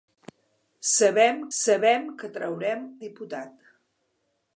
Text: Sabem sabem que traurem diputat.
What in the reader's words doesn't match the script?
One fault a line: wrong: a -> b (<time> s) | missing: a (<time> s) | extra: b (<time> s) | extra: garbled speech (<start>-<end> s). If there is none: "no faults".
no faults